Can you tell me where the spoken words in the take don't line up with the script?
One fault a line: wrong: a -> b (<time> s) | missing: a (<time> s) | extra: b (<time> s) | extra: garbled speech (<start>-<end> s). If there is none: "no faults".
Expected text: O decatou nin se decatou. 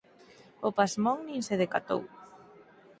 wrong: decatou -> pasmón (0.8 s)